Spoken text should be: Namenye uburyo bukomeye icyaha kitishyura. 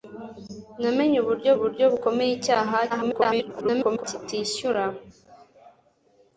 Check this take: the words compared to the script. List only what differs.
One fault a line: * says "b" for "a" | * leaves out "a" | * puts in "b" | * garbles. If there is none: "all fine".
* puts in "uburyo"
* garbles